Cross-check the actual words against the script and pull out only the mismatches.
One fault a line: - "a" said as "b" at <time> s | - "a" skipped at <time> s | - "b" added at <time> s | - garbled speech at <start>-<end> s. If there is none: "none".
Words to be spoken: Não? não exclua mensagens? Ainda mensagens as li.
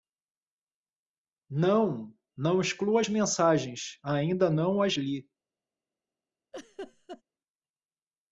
- "as" added at 3.0 s
- "mensagens" said as "não" at 4.5 s